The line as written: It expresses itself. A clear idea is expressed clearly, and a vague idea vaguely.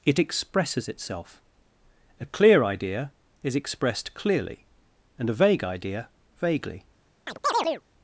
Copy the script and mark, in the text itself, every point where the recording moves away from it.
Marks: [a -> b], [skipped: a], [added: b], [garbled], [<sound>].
It expresses itself. A clear idea is expressed clearly, and a vague idea vaguely. [chirp]